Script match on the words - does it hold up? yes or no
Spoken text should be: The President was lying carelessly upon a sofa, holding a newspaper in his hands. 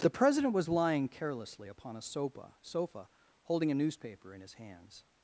no